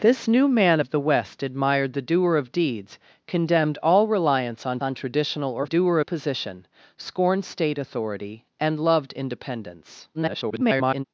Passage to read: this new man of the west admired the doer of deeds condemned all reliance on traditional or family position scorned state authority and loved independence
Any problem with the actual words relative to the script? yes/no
yes